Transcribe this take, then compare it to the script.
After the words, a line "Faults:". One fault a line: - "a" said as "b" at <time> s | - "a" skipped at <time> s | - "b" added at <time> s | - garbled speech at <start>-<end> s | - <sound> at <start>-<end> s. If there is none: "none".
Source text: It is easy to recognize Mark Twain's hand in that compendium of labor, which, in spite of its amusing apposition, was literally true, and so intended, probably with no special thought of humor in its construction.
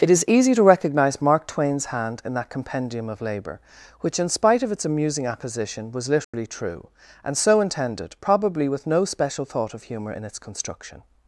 It is easy to recognize Mark Twain's hand in that compendium of labor, which, in spite of its amusing apposition, was literally true, and so intended, probably with no special thought of humor in its construction.
Faults:
- dropout at 6.2-6.3 s